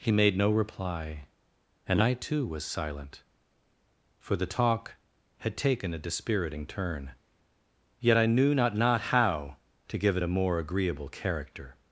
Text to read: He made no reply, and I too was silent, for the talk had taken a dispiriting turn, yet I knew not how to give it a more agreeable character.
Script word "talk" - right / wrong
right